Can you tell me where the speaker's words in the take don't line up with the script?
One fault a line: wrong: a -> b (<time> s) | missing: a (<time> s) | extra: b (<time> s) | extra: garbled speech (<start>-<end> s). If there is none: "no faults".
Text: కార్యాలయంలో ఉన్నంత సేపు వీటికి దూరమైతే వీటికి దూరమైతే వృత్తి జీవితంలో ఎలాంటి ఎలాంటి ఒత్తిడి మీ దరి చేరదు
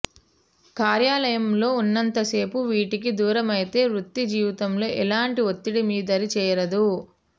missing: వీటికి దూరమైతే (3.8 s)
missing: ఎలాంటి (5.4 s)